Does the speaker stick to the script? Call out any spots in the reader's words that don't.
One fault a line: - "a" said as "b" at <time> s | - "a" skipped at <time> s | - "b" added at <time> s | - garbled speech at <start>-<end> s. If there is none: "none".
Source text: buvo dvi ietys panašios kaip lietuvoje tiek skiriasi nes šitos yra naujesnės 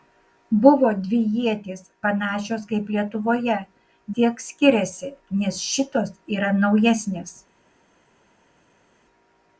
none